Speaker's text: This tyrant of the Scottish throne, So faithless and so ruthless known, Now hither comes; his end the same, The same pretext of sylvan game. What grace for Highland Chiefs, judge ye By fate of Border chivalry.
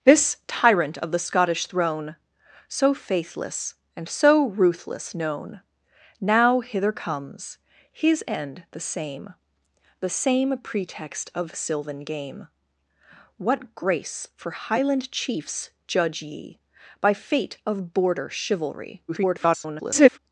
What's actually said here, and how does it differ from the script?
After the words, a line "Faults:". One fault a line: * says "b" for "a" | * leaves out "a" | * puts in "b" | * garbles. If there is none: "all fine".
This tyrant of the Scottish throne, So faithless and so ruthless known, Now hither comes; his end the same, The same pretext of sylvan game. What grace for Highland Chiefs, judge ye By fate of Border chivalry. [garbled]
Faults:
* garbles